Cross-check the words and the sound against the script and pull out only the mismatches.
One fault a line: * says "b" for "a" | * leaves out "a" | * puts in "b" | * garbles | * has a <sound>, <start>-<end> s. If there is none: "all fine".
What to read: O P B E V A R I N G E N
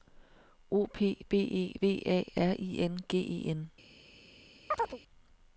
* has a chirp, 4.7-5.0 s